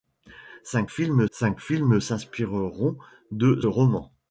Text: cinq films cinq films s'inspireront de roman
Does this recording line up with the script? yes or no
yes